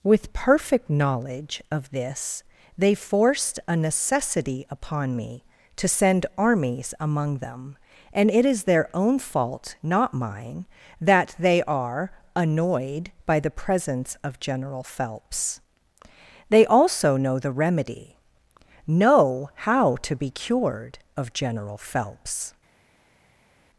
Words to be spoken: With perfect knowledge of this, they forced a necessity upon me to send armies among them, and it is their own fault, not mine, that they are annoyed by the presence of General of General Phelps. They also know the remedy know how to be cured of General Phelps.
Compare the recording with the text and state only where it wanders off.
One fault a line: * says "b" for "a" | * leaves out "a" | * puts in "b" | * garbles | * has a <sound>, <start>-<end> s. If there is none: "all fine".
* leaves out "of General"